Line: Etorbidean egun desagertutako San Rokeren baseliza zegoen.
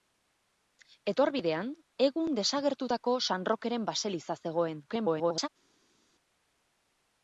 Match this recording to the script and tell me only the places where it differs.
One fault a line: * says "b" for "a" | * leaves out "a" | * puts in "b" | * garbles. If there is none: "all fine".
* garbles